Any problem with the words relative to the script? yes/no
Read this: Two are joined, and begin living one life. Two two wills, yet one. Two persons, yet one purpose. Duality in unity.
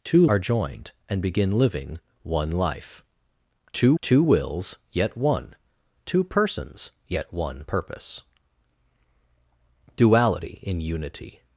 no